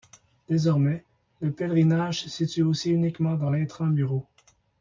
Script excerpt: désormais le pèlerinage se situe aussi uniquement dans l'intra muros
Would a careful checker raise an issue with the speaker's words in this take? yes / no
no